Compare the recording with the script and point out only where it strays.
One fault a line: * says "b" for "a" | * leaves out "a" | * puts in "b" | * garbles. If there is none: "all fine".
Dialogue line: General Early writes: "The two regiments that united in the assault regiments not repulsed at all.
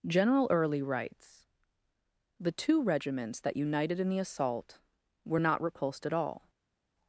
* says "were" for "regiments"